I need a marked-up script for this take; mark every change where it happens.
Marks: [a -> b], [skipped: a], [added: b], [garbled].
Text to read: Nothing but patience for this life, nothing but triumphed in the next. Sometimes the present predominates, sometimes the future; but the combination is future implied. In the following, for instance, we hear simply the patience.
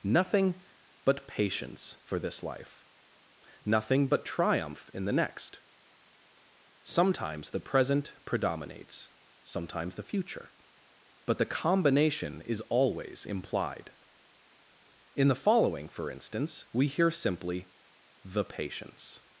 Nothing but patience for this life, nothing but [triumphed -> triumph] in the next. Sometimes the present predominates, sometimes the future; but the combination is [future -> always] implied. In the following, for instance, we hear simply the patience.